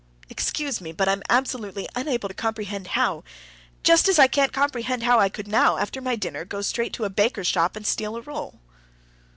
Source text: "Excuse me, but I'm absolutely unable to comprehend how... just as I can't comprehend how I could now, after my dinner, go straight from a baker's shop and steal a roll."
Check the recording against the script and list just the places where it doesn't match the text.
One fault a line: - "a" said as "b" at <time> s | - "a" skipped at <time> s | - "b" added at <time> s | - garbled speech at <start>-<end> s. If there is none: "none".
- "from" said as "to" at 7.0 s